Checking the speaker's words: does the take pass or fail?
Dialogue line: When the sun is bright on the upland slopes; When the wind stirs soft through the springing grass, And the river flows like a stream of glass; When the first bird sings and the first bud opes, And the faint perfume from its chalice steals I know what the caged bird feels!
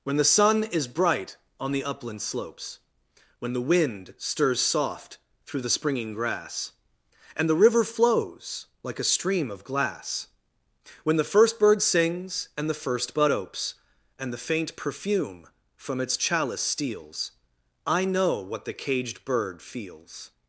pass